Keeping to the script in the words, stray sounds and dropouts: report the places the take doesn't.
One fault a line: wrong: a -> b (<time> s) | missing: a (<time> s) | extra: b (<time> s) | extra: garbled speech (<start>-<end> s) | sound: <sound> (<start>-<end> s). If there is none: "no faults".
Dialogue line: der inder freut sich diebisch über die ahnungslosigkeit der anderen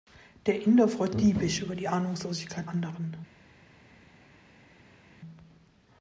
missing: sich (1.1 s)
missing: der (2.7 s)